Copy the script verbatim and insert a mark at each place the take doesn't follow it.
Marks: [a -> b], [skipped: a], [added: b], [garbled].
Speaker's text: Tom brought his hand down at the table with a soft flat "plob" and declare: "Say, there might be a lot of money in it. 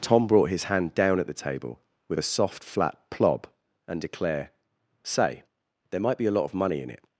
Tom brought his hand down at the table with a soft flat "plob" and declare: "Say, there might be a lot of money in it.